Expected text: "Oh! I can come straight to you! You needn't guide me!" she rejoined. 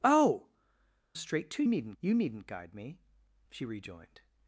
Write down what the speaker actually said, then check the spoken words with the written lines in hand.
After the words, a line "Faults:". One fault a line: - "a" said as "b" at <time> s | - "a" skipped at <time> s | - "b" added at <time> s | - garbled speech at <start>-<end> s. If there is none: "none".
"Oh! straight to needn't! You needn't guide me!" she rejoined.
Faults:
- "I can come" skipped at 0.5 s
- "you" said as "needn't" at 1.7 s